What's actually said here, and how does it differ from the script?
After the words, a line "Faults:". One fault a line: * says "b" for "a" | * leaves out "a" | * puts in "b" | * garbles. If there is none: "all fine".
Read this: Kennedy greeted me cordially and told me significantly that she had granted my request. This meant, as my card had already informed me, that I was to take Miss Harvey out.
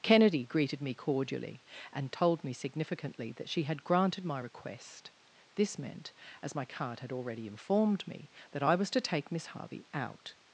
Kennedy greeted me cordially and told me significantly that she had granted my request. This meant, as my card had already informed me, that I was to take Miss Harvey out.
Faults:
all fine